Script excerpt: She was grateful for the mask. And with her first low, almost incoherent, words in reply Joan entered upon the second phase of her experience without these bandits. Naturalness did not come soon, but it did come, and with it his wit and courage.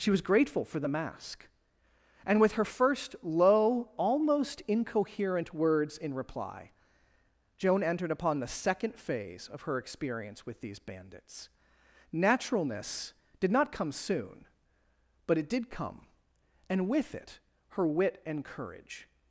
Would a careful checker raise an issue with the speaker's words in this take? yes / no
yes